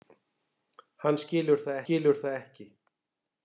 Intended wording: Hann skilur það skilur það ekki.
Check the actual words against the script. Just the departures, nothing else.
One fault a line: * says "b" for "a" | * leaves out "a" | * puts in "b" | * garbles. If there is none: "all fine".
all fine